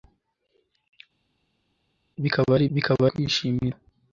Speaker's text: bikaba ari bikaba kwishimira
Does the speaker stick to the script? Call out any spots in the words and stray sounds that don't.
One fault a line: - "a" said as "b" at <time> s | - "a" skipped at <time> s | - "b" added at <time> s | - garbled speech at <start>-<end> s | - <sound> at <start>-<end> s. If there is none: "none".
none